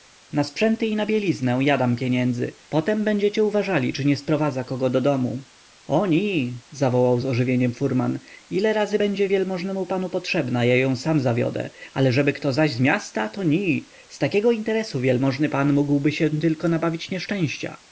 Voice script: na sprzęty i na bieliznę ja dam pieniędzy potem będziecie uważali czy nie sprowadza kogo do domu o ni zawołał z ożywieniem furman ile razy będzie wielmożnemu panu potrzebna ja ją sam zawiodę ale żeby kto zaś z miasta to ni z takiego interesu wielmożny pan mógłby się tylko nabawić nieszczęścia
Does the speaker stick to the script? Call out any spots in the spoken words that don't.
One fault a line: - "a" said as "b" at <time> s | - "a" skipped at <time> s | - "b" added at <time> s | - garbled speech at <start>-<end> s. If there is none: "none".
none